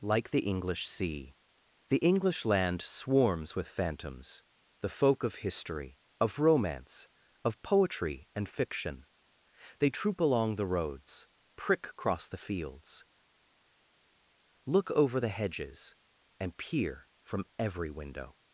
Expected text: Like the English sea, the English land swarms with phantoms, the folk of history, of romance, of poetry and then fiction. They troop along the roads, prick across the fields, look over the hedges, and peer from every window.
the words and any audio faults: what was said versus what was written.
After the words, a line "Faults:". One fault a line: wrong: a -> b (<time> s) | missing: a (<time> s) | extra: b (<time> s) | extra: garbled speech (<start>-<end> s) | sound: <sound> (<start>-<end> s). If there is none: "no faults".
Like the English sea, the English land swarms with phantoms, the folk of history, of romance, of poetry and fiction. They troop along the roads, prick across the fields, look over the hedges, and peer from every window.
Faults:
missing: then (8.5 s)